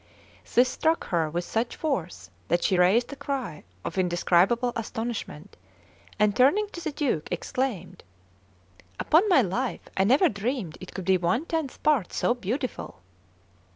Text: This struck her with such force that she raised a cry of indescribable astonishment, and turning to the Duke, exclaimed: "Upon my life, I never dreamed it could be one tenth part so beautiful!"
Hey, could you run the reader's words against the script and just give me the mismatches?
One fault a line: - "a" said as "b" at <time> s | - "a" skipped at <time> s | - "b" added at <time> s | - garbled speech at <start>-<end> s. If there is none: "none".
none